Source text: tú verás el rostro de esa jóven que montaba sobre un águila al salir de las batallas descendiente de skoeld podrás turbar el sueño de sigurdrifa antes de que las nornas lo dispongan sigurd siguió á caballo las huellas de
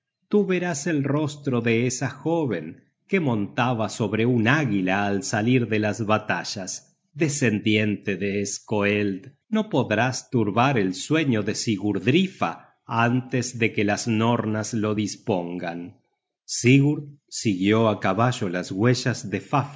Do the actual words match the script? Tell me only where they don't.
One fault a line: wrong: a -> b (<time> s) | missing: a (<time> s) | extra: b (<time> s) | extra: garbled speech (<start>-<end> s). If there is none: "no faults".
extra: no (9.5 s)